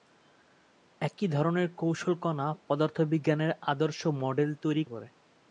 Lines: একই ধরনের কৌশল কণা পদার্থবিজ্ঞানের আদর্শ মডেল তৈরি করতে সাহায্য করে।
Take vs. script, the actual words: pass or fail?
fail